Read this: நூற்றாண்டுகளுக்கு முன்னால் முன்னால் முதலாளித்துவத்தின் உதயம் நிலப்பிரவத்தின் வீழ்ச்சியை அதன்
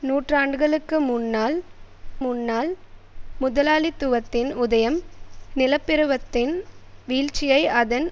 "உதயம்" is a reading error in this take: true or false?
false